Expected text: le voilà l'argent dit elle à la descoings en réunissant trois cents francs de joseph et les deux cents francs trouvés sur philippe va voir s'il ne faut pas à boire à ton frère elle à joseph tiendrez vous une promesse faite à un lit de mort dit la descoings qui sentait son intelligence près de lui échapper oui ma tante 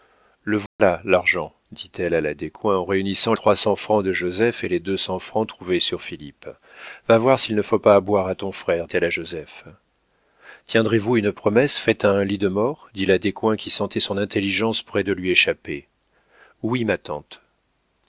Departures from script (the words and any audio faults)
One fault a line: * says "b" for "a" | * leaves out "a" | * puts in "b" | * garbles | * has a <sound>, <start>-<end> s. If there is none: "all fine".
* has a dropout, 0.7-0.8 s